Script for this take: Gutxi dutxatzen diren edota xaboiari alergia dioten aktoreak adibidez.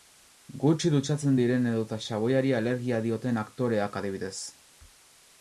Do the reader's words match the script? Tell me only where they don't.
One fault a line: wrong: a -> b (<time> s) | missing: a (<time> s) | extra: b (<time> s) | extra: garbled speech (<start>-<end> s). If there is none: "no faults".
no faults